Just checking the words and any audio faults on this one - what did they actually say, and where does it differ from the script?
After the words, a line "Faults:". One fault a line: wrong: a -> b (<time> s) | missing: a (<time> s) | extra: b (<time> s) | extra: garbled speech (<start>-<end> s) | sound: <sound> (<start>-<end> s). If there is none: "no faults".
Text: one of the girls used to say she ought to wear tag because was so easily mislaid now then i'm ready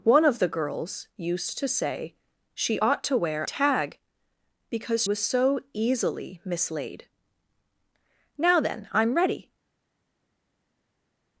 one of the girls used to say she ought to wear tag because was so easily mislaid now then i'm ready
Faults:
no faults